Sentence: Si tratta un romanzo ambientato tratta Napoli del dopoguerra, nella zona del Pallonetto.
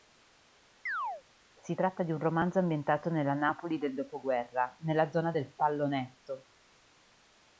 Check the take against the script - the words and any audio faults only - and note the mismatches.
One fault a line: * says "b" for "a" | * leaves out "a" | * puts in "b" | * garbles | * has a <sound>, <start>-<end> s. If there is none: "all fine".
* has a chirp, 0.9-1.2 s
* puts in "di"
* says "nella" for "tratta"